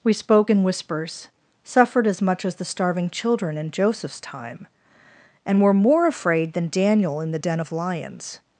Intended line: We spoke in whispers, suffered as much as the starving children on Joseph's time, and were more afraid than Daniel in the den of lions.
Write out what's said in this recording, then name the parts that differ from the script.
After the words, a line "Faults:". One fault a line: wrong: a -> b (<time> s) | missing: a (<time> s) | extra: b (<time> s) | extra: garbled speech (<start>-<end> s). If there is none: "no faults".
We spoke in whispers, suffered as much as the starving children in Joseph's time, and were more afraid than Daniel in the den of lions.
Faults:
wrong: on -> in (3.6 s)